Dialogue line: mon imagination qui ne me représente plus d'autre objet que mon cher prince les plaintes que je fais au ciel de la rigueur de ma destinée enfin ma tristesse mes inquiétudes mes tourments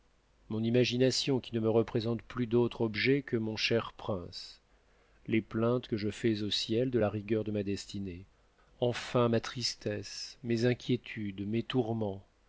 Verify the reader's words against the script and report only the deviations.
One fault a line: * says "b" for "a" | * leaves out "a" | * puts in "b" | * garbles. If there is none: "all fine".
all fine